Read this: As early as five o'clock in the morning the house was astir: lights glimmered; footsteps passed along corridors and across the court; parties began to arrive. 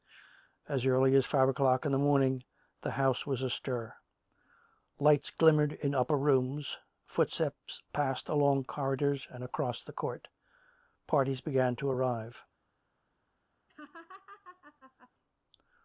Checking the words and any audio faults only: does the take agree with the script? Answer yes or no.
no